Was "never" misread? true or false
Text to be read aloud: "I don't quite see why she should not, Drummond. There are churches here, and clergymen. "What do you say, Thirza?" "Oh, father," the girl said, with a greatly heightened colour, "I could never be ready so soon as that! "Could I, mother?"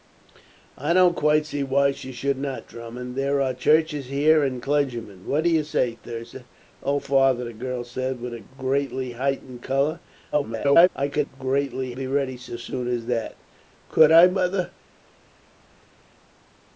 true